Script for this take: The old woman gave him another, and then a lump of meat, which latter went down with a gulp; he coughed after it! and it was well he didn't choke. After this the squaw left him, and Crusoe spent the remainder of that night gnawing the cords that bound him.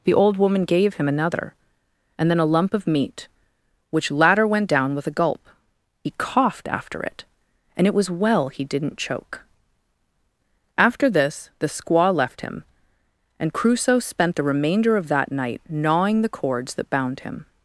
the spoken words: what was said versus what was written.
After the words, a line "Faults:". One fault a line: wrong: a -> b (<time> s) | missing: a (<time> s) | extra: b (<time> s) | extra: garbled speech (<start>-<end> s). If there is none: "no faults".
The old woman gave him another, and then a lump of meat, which latter went down with a gulp; he coughed after it! and it was well he didn't choke. After this the squaw left him, and Crusoe spent the remainder of that night gnawing the cords that bound him.
Faults:
no faults